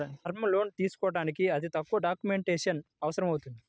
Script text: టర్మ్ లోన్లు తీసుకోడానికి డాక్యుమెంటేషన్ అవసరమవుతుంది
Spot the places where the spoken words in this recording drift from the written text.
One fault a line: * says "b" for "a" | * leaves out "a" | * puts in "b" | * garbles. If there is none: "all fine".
* puts in "అతి తక్కువ"